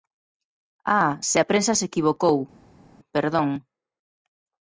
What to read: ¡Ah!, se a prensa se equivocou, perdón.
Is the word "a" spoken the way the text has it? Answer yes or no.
yes